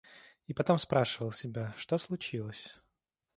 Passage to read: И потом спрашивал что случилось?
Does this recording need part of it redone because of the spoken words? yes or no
yes